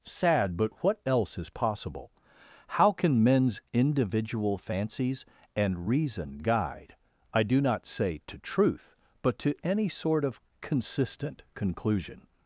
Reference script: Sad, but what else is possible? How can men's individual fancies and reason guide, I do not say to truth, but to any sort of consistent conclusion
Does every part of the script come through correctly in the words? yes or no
yes